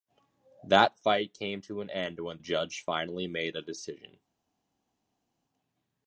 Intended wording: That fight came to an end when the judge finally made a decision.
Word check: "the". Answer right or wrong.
wrong